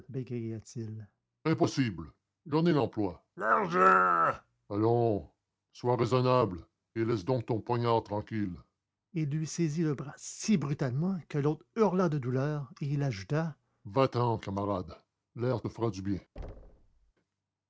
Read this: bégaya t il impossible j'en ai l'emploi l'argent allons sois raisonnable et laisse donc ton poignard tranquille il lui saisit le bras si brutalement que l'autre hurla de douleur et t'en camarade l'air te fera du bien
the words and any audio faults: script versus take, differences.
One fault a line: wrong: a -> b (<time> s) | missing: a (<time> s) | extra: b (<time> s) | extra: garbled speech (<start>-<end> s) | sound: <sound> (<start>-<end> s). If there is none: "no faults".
extra: il ajouta va (12.8 s)
sound: thud (16.4-17.1 s)